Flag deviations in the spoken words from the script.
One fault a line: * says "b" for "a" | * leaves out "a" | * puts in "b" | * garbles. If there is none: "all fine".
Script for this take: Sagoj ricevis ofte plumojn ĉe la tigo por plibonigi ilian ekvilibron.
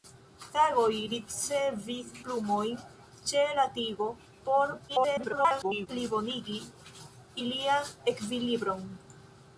* leaves out "ofte"
* garbles